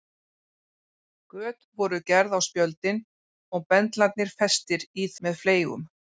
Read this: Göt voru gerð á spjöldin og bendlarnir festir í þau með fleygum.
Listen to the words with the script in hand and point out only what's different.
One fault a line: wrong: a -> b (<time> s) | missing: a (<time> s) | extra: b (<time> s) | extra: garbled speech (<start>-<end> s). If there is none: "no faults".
missing: þau (5.1 s)